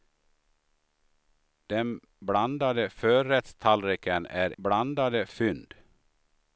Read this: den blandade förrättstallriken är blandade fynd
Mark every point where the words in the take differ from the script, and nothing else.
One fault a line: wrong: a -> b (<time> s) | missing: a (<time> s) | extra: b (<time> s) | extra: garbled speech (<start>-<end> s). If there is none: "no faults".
no faults